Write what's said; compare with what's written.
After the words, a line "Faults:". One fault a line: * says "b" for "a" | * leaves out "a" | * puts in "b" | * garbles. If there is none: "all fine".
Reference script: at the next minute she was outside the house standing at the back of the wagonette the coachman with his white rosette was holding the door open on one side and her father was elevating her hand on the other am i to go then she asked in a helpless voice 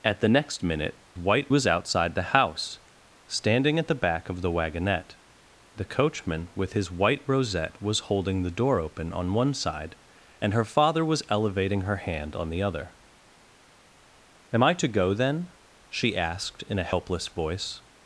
at the next minute white was outside the house standing at the back of the wagonette the coachman with his white rosette was holding the door open on one side and her father was elevating her hand on the other am i to go then she asked in a helpless voice
Faults:
* says "white" for "she"